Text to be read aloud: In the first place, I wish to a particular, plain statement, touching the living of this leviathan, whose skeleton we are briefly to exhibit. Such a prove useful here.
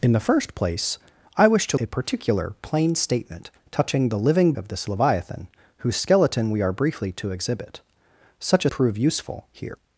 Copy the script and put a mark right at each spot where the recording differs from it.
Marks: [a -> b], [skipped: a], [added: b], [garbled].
In the first place, I wish to a particular, plain statement, touching the living of this leviathan, whose skeleton we are briefly to exhibit. Such a prove useful here.